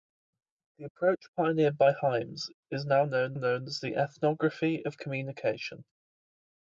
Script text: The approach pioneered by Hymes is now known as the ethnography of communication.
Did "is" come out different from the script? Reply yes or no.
no